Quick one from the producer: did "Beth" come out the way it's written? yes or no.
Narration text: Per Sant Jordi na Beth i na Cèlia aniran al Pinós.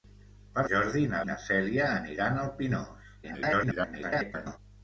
no